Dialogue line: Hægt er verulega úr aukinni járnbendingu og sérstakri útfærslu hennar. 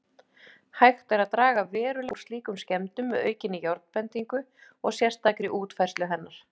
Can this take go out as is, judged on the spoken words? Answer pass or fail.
fail